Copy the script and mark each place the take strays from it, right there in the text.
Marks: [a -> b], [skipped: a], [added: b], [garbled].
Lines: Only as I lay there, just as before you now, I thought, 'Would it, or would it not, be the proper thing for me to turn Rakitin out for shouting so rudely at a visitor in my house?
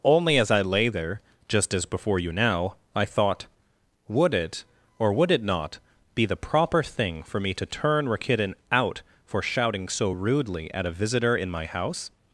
Only as I lay there, just as before you now, I thought, 'Would it, or would it not, be the proper thing for me to turn Rakitin out for shouting so rudely at a visitor in my house?